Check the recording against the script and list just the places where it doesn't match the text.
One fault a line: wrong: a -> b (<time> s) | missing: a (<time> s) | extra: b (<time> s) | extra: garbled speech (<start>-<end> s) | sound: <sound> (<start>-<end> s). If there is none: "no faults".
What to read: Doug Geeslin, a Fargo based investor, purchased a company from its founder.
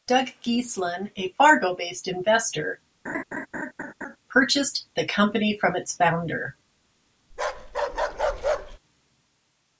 sound: laugh (3.1-4.2 s)
wrong: a -> the (5.0 s)
sound: bark (7.3-8.8 s)